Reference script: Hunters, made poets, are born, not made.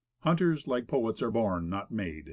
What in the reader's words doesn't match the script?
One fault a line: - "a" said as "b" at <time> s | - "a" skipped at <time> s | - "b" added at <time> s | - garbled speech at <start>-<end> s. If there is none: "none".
- "made" said as "like" at 0.7 s